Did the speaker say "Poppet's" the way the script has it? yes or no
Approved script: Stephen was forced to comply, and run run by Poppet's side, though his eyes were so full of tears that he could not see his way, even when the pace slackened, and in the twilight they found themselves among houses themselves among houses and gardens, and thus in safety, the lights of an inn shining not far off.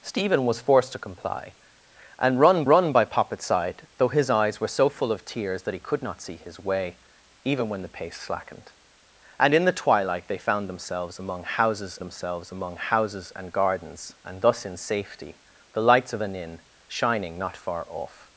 yes